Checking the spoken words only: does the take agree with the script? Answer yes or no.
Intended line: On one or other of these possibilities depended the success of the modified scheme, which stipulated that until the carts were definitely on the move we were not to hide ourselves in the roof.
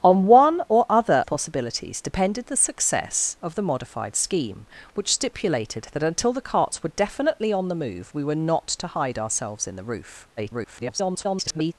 no